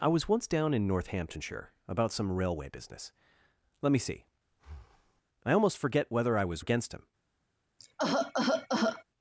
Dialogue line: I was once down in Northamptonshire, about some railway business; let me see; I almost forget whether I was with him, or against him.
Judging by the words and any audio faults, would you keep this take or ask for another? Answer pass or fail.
fail